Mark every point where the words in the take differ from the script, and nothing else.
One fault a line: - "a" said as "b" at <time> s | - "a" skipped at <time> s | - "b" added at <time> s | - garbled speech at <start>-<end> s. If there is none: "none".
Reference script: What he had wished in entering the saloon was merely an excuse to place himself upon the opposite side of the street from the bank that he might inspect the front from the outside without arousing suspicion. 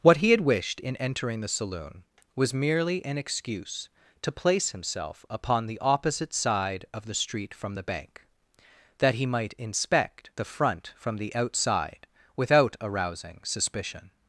none